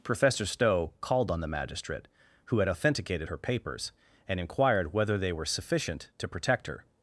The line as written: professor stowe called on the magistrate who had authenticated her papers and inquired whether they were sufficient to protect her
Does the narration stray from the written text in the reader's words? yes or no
no